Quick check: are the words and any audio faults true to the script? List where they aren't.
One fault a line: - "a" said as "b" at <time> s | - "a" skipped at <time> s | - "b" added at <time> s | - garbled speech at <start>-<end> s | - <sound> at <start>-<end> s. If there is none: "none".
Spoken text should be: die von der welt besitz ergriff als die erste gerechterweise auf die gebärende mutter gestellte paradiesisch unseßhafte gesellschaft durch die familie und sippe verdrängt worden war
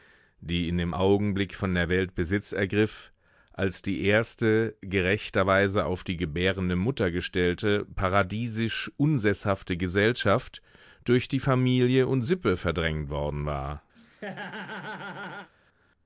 - "in dem augenblick" added at 0.7 s
- laugh at 14.0-15.5 s